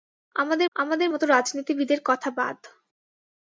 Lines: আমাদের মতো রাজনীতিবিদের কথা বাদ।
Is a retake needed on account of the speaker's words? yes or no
yes